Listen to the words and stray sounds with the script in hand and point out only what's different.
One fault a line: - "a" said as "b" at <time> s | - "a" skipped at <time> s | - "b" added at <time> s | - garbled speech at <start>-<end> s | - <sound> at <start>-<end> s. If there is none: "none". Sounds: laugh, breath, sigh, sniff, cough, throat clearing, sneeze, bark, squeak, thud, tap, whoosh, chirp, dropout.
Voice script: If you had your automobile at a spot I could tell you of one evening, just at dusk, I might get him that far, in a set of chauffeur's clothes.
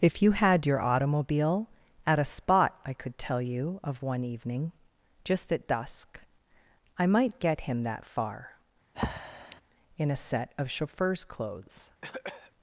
- breath at 8.9-9.6 s
- cough at 12.0-12.5 s